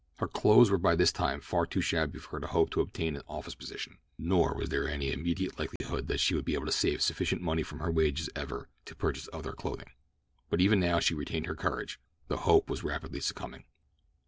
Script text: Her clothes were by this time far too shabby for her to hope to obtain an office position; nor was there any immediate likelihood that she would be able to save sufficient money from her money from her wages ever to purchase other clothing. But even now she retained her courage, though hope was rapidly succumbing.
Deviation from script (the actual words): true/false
true